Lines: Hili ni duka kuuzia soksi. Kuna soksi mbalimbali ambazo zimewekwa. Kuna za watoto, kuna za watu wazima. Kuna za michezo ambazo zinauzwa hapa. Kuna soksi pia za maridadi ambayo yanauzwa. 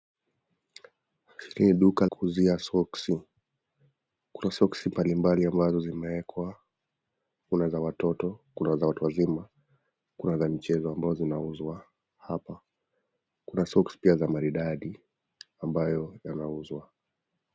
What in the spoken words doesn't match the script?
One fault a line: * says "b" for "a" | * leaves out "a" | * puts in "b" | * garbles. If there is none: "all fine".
all fine